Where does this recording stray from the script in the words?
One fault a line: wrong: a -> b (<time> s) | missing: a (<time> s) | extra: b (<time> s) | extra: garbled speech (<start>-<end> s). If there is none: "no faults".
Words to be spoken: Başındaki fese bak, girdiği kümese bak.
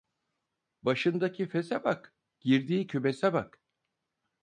no faults